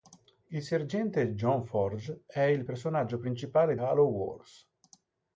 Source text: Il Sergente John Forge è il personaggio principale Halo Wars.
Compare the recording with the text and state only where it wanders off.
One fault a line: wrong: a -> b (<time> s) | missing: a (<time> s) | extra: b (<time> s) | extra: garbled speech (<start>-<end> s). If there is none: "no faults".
no faults